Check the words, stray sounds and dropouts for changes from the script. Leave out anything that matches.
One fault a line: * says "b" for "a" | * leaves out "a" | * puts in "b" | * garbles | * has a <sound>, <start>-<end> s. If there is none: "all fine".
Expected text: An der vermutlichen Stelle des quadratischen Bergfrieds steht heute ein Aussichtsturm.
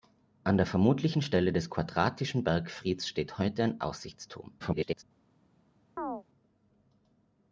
* garbles
* has a chirp, 6.0-6.2 s